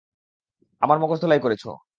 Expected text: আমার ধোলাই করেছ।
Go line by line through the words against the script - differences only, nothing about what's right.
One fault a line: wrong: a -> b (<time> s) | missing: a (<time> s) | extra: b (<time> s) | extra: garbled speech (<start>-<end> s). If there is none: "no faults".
extra: মগজ (1.0 s)